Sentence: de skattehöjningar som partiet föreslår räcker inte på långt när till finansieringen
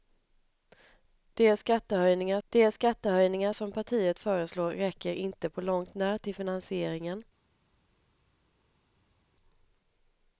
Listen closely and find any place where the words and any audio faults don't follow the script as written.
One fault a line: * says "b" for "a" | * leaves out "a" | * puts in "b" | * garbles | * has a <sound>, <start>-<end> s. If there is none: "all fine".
* puts in "de skattehöjningar"